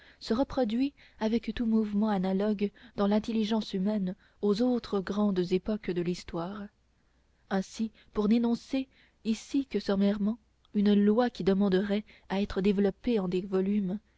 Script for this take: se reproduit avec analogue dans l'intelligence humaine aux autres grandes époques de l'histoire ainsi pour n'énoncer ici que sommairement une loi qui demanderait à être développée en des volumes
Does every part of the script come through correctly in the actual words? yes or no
no